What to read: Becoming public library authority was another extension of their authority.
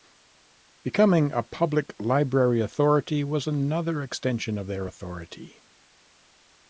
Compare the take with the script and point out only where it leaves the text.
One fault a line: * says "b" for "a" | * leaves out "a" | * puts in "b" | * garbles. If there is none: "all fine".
* puts in "a"